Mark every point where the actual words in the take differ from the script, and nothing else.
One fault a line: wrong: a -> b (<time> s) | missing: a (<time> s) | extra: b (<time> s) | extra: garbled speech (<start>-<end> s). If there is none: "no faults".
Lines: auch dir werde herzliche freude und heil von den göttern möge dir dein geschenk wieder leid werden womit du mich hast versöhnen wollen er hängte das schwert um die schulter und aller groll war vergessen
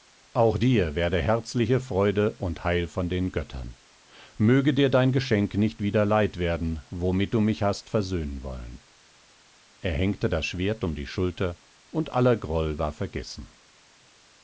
extra: nicht (5.5 s)